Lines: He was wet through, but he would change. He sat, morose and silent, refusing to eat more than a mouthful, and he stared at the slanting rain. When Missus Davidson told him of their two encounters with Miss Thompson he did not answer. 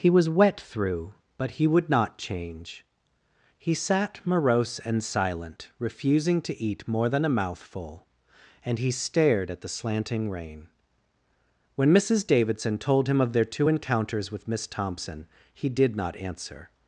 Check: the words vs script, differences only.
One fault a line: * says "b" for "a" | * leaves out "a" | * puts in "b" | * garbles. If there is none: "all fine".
* puts in "not"